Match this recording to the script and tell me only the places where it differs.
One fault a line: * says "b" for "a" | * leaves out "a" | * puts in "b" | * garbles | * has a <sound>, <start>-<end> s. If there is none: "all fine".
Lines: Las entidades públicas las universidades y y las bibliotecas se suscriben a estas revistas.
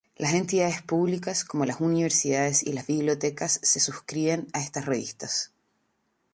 * puts in "como"
* leaves out "y"